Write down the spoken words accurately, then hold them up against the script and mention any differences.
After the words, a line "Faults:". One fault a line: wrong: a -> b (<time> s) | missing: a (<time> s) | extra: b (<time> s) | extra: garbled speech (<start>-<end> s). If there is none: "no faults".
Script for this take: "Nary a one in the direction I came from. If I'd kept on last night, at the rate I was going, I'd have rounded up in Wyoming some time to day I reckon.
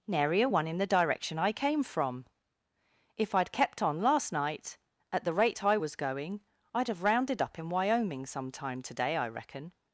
"Nary a one in the direction I came from. If I'd kept on last night, at the rate I was going, I'd have rounded up in Wyoming some time to day I reckon.
Faults:
no faults